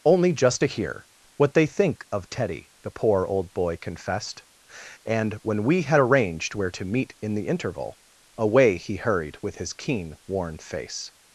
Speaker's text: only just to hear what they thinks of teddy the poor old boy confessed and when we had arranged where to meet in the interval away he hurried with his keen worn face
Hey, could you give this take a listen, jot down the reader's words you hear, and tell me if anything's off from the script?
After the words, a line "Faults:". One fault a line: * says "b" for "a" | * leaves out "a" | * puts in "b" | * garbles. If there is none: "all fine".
only just to hear what they think of teddy the poor old boy confessed and when we had arranged where to meet in the interval away he hurried with his keen worn face
Faults:
* says "think" for "thinks"